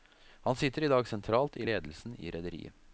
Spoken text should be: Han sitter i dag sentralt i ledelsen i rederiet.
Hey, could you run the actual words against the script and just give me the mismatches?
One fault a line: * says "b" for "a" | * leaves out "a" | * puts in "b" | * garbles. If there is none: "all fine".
all fine